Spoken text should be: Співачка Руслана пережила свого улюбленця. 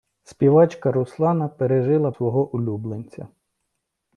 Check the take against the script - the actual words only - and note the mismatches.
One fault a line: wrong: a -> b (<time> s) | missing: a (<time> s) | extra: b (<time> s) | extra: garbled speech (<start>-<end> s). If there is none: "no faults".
no faults